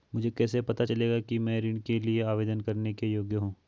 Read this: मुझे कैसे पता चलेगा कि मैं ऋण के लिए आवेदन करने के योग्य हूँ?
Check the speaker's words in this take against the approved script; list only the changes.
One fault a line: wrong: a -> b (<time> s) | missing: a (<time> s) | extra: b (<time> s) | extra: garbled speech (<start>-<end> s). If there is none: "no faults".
no faults